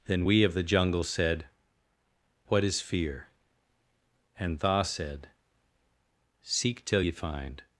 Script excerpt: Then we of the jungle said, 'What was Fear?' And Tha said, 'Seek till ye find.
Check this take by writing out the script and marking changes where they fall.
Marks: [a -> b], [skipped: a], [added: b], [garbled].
Then we of the jungle said, 'What [was -> is] Fear?' And Tha said, 'Seek till ye find.